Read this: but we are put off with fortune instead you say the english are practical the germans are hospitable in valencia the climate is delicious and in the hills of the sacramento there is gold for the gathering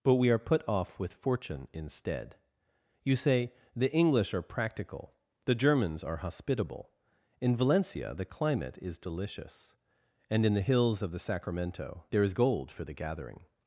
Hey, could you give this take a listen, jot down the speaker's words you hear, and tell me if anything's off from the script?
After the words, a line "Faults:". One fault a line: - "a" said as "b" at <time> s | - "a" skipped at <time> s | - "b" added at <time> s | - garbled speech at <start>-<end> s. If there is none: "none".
but we are put off with fortune instead you say the english are practical the germans are hospitable in valencia the climate is delicious and in the hills of the sacramento there is gold for the gathering
Faults:
none